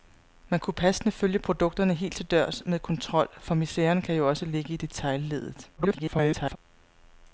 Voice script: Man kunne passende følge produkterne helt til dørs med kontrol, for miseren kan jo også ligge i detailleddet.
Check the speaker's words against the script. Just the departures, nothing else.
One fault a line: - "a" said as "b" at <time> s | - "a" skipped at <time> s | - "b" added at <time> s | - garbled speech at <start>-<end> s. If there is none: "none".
- garbled speech at 5.8-6.6 s